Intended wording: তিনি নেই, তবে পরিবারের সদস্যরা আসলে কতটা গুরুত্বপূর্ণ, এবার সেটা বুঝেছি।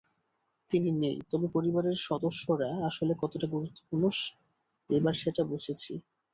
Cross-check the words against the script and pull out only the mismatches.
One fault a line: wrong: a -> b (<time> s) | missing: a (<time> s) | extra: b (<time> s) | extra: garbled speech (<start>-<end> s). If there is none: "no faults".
no faults